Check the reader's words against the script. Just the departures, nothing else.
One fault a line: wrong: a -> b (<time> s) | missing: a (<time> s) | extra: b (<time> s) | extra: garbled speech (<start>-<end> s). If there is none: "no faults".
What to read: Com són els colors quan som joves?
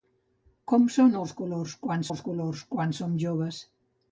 extra: els colors quan (2.1 s)